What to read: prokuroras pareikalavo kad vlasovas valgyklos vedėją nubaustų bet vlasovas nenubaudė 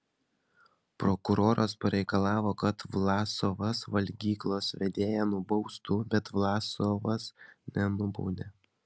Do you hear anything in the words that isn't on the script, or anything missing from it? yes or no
no